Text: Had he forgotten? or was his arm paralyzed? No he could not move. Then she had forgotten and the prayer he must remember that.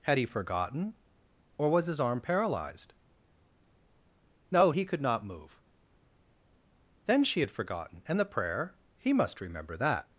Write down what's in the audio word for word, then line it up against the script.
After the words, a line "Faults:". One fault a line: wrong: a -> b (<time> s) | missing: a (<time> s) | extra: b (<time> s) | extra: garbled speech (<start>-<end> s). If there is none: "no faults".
Had he forgotten? or was his arm paralyzed? No he could not move. Then she had forgotten and the prayer he must remember that.
Faults:
no faults